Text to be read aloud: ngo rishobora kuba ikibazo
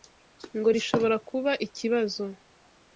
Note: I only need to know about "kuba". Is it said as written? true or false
true